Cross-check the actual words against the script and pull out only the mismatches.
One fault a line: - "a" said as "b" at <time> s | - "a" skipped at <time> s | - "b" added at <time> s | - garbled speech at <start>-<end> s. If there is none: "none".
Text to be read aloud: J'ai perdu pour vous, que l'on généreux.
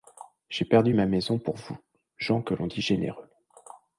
- "ma maison" added at 0.9 s
- "gens" added at 2.2 s
- "dit" added at 2.7 s